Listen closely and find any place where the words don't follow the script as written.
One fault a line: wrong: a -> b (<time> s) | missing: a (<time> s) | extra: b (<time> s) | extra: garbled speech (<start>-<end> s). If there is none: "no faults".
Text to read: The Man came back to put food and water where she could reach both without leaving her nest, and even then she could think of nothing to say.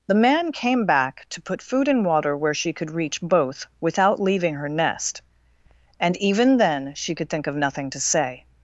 no faults